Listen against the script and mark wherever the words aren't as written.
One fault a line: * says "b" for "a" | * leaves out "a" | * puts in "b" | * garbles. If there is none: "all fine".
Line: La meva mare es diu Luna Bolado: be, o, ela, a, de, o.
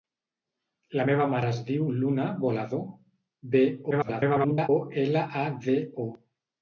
* garbles